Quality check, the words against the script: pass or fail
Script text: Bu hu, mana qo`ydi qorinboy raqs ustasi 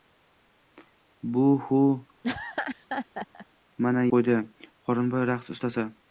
pass